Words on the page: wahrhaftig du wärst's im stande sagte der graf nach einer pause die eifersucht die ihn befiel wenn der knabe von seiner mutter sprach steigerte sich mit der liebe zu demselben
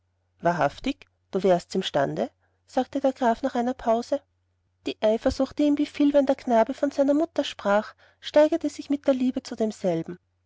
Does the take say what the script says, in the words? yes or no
yes